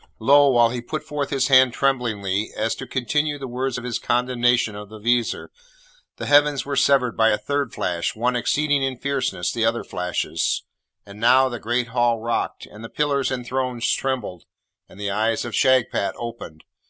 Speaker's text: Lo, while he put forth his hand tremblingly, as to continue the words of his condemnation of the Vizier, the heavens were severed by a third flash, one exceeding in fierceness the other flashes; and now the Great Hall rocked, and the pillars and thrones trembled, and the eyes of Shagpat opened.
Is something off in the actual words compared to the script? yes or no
no